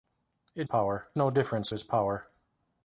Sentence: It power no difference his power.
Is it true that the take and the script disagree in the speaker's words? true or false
false